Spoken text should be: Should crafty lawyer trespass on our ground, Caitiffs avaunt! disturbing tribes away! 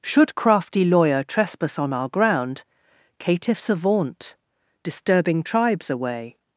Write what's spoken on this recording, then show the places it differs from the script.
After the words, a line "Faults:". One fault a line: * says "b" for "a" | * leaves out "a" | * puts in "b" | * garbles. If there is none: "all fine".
Should crafty lawyer trespass on our ground, Caitiffs avaunt! disturbing tribes away!
Faults:
all fine